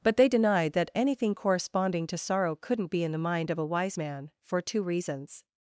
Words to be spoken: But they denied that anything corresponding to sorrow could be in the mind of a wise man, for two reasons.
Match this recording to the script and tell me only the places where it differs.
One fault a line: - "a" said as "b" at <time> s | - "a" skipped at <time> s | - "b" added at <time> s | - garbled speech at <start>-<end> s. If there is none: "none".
- "could" said as "couldn't" at 2.5 s